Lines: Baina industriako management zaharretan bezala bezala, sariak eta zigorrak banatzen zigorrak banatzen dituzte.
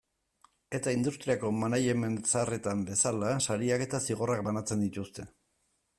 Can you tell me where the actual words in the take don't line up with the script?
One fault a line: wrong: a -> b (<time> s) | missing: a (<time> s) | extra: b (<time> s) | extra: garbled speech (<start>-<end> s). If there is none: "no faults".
wrong: Baina -> Eta (0.8 s)
missing: bezala (3.4 s)
missing: zigorrak banatzen (4.8 s)